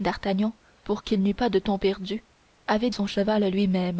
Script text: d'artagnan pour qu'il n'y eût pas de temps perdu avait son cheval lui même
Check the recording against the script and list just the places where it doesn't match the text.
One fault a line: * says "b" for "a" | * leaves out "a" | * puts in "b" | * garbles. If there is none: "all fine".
all fine